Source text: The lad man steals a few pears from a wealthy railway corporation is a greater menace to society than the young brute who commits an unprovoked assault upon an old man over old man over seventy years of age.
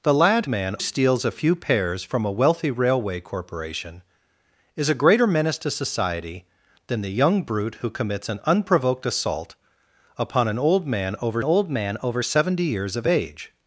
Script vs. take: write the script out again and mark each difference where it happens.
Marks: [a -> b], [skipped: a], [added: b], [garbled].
The lad man steals a few pears from a wealthy railway corporation is a greater menace to society than the young brute who commits an unprovoked assault upon an old man over old man over seventy years of age.